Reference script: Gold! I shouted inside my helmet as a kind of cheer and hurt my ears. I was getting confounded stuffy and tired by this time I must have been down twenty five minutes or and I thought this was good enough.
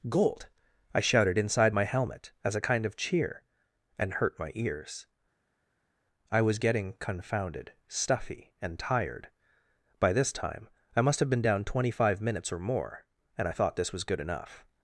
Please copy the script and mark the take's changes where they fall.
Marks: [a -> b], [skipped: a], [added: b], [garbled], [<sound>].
Gold! I shouted inside my helmet as a kind of cheer and hurt my ears. I was getting confounded stuffy and tired by this time I must have been down twenty five minutes or [added: more] and I thought this was good enough.